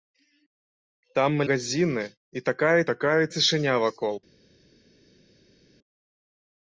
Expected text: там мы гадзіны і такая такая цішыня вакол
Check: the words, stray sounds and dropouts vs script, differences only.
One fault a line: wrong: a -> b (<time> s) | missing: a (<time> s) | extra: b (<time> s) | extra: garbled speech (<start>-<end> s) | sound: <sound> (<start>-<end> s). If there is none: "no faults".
no faults